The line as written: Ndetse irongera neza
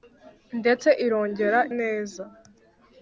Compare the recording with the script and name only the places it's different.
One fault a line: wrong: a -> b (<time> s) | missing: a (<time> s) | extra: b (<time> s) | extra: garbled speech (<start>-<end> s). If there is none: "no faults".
no faults